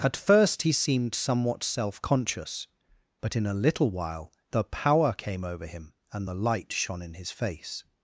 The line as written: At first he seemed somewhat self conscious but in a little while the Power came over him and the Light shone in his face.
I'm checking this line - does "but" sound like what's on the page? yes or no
yes